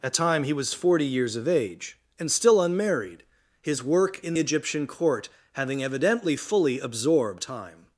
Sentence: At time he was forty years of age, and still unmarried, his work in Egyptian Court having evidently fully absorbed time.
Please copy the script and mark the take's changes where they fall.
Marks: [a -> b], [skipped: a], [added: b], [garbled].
At time he was forty years of age, and still unmarried, his work in Egyptian Court having evidently fully absorbed time.